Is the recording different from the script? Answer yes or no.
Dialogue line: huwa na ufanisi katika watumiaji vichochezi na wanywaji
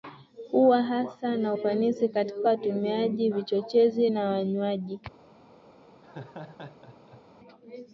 yes